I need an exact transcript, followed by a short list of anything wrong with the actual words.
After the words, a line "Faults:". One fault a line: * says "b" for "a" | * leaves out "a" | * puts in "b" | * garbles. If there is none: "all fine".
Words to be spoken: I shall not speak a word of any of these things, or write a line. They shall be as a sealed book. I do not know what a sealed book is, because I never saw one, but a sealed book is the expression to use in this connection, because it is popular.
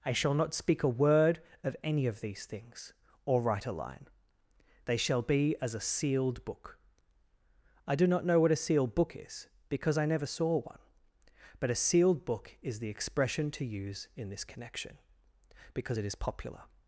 I shall not speak a word of any of these things, or write a line. They shall be as a sealed book. I do not know what a sealed book is, because I never saw one, but a sealed book is the expression to use in this connection, because it is popular.
Faults:
all fine